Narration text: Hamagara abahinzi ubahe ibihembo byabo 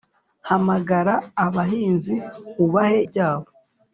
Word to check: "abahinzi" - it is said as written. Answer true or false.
true